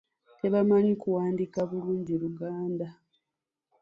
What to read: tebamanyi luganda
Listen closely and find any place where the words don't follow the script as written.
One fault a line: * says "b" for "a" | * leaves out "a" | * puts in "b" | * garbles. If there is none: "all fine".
* puts in "kuwandiika bulungi"